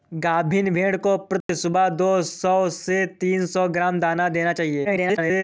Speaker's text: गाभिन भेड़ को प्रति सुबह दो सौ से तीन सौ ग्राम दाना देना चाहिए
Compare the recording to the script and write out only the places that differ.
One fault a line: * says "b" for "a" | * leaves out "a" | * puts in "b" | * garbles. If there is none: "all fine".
* garbles